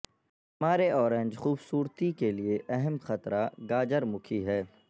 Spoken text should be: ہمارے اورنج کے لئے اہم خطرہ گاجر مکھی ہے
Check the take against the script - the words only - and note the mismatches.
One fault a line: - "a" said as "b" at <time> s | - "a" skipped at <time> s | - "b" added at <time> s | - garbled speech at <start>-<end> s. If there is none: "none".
- "خوبصورتی" added at 1.3 s